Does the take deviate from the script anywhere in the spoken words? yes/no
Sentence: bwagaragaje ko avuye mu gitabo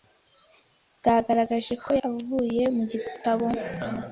no